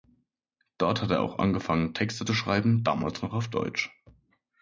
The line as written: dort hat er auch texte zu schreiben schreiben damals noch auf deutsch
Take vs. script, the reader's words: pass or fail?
fail